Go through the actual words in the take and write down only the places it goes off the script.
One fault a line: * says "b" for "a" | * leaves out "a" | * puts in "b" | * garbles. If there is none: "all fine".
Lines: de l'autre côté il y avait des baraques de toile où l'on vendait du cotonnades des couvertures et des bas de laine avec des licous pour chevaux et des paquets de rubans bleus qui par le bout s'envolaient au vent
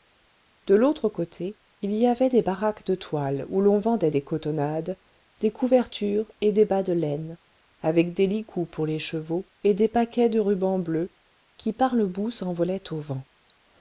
* says "des" for "du"
* puts in "les"